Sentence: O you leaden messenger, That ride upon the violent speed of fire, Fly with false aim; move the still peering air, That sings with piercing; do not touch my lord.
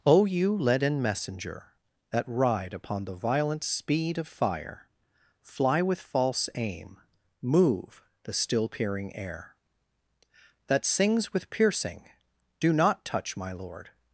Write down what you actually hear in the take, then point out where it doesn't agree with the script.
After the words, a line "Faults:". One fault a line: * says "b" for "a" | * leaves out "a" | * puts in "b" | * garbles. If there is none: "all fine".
O you leaden messenger, That ride upon the violent speed of fire, Fly with false aim; move the still peering air, That sings with piercing; do not touch my lord.
Faults:
all fine